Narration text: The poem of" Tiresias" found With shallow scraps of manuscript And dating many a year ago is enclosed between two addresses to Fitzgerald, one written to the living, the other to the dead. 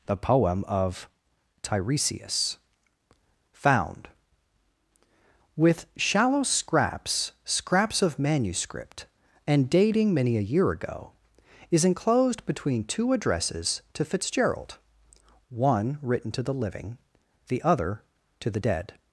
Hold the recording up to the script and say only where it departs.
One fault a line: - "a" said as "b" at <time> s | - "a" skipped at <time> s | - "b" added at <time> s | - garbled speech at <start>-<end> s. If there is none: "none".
- "scraps" added at 7.5 s